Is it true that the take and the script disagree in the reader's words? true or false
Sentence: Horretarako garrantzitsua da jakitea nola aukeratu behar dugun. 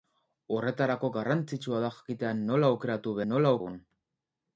true